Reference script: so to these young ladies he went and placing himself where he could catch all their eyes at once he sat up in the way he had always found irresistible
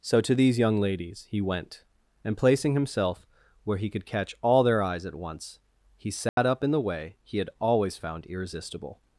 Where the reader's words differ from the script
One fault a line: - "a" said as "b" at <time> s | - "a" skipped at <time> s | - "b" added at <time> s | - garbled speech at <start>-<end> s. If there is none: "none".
none